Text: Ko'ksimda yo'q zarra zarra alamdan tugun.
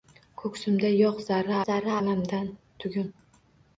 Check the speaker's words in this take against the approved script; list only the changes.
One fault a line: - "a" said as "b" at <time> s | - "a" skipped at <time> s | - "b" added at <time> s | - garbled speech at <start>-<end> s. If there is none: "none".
none